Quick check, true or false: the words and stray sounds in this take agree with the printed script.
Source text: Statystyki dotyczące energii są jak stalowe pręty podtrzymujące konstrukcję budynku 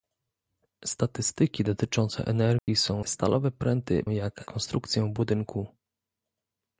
false